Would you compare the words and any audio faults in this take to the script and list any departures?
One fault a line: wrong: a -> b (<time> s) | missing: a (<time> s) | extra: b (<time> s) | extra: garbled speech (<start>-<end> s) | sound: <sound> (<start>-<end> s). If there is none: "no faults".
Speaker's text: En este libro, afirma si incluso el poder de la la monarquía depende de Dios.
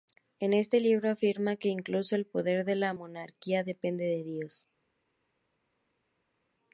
wrong: si -> que (1.6 s)
missing: la (3.0 s)